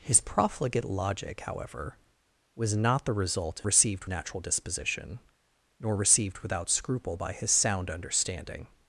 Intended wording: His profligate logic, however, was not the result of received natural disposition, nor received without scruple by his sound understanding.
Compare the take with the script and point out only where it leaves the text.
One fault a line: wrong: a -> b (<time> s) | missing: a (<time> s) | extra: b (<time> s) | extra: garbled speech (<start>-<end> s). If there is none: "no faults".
no faults